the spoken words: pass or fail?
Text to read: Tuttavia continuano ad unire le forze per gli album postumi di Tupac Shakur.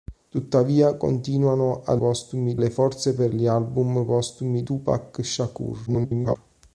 fail